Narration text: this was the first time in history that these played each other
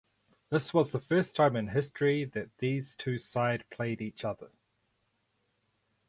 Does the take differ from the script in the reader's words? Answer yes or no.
yes